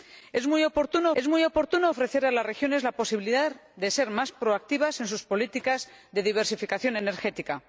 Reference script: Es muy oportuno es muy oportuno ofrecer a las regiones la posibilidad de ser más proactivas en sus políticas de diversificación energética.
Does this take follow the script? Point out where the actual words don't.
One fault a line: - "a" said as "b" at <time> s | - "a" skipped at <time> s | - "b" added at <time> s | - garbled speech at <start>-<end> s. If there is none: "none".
none